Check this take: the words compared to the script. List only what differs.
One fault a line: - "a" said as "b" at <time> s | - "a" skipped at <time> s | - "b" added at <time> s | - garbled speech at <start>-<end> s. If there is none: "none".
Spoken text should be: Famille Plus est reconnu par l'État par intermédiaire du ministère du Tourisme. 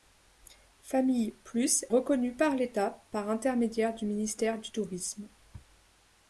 - "est" skipped at 1.9 s